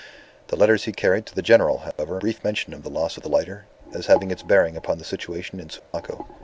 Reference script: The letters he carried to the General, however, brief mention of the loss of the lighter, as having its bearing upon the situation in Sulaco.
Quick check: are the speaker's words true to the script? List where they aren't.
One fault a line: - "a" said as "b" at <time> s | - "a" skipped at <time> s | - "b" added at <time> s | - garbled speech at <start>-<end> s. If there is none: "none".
none